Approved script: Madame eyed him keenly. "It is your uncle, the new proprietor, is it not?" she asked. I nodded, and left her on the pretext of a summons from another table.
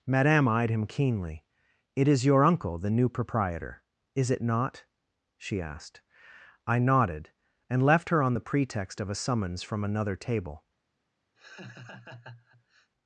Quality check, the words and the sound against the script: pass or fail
fail